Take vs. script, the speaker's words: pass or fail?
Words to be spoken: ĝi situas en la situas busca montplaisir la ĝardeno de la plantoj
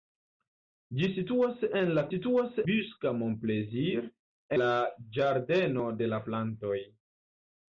pass